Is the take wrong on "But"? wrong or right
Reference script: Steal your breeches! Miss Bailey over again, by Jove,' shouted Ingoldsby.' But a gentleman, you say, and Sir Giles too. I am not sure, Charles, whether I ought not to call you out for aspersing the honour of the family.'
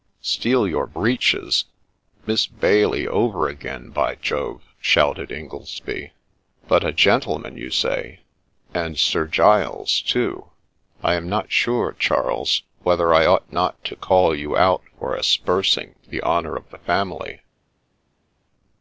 right